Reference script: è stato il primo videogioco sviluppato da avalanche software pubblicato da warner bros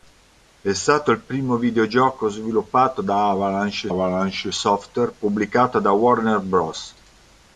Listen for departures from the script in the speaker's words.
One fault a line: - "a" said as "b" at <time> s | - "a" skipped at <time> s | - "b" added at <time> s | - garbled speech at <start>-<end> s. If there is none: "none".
- "avalanche" added at 3.9 s